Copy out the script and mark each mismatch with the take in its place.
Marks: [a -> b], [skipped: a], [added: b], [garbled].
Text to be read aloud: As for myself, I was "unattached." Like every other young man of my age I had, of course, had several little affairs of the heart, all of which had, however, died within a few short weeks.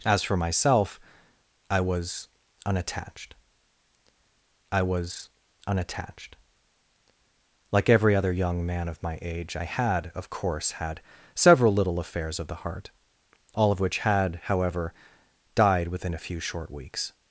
As for myself, I was "unattached." [added: I was unattached] Like every other young man of my age I had, of course, had several little affairs of the heart, all of which had, however, died within a few short weeks.